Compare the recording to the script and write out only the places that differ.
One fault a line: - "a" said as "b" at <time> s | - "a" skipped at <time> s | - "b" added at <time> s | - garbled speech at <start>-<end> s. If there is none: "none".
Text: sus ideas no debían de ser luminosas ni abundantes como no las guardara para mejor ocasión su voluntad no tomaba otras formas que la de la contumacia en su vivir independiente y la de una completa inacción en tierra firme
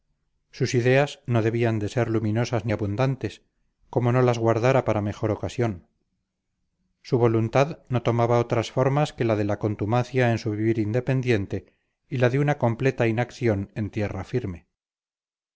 none